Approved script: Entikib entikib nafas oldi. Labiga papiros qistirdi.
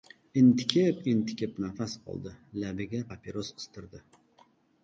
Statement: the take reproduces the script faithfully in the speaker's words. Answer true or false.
true